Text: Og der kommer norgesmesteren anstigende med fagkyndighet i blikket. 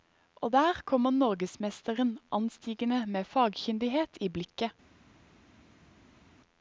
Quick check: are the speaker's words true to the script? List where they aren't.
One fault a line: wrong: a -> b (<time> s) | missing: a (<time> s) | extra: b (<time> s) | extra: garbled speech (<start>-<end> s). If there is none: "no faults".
no faults